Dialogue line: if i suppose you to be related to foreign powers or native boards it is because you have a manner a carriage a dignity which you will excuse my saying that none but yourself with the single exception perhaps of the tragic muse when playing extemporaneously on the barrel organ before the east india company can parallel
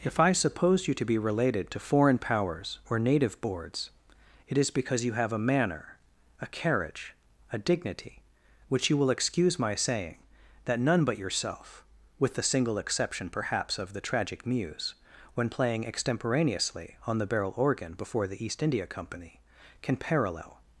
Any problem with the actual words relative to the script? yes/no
no